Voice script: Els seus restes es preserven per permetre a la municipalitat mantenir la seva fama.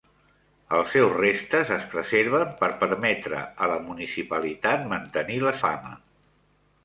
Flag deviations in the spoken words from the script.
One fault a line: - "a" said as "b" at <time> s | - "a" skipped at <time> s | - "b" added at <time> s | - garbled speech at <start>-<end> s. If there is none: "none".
- "seva" skipped at 5.6 s